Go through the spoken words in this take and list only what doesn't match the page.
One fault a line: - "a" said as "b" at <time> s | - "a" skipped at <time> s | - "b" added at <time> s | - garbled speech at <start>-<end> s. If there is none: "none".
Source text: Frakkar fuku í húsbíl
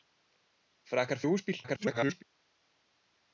- "fuku" skipped at 1.2 s
- garbled speech at 1.6-2.2 s